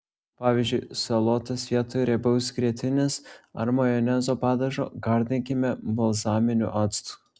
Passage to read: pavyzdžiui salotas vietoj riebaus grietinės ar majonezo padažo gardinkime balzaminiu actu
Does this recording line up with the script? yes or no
yes